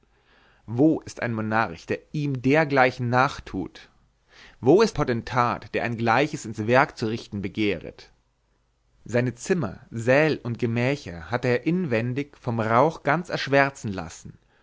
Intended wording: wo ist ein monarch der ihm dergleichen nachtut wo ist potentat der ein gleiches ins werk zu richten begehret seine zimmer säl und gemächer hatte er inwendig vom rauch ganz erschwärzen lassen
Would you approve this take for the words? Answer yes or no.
yes